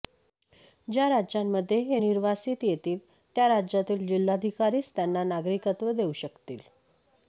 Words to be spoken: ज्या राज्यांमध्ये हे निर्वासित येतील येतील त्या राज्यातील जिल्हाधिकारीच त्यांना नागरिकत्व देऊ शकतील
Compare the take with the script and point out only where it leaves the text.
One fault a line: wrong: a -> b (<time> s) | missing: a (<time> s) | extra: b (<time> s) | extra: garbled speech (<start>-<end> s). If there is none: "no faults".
missing: येतील (3.0 s)